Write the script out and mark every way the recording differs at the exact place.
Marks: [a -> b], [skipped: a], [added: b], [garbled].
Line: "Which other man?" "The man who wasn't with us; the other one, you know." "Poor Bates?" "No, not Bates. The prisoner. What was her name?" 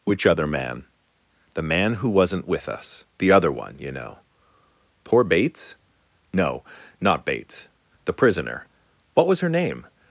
"Which other man?" "The man who wasn't with us; the other one, you know." "Poor Bates?" "No, not Bates. The prisoner. What was her name?"